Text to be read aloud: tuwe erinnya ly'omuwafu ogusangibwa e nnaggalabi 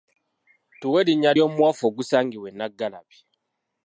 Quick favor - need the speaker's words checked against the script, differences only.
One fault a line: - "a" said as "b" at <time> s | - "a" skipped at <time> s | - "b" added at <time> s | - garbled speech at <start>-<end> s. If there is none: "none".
none